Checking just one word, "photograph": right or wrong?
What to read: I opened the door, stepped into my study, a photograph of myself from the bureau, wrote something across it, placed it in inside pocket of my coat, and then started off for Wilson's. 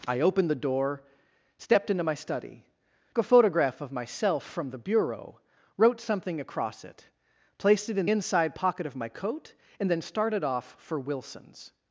right